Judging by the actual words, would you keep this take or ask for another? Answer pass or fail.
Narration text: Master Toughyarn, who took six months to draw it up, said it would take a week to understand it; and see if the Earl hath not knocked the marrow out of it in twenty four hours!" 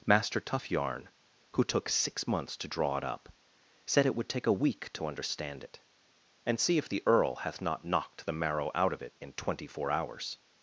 pass